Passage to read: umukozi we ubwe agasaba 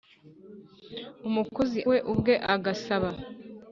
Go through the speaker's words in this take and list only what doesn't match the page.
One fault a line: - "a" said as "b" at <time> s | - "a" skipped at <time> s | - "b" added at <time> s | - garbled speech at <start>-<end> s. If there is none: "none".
none